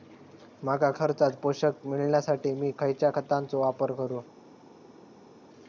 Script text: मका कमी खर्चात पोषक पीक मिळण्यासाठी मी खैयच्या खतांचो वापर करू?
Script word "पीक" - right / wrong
wrong